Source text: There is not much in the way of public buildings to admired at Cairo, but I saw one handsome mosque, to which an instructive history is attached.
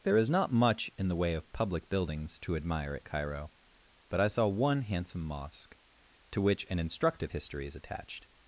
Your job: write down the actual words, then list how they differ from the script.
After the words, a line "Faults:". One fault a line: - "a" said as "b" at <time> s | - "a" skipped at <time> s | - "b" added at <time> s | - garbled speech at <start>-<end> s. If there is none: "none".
There is not much in the way of public buildings to admire at Cairo, but I saw one handsome mosque, to which an instructive history is attached.
Faults:
- "admired" said as "admire" at 2.5 s